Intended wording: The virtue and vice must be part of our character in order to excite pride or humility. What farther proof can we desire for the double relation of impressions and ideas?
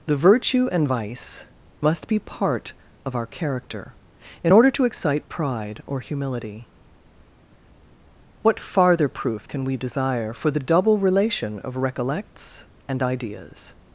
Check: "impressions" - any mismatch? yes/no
yes